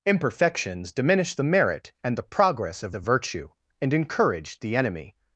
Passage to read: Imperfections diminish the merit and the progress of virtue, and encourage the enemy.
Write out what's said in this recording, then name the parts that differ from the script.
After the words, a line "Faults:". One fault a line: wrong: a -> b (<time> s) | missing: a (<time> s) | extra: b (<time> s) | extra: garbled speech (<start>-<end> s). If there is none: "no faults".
Imperfections diminish the merit and the progress of of virtue, and encourage the enemy.
Faults:
extra: of (2.9 s)